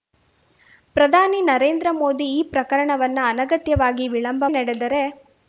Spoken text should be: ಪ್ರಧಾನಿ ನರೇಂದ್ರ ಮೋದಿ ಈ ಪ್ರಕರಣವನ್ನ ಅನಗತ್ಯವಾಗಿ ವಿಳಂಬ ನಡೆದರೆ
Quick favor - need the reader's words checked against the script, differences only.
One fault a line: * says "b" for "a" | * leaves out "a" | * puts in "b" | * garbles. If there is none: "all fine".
all fine